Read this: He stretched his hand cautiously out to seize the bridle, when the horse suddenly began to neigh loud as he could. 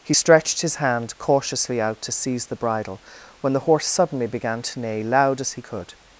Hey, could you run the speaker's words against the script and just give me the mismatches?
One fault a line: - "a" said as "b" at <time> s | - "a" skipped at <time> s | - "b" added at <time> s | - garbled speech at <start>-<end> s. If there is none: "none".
none